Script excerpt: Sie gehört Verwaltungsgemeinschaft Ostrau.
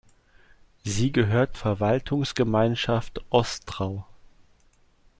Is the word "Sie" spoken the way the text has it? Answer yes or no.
yes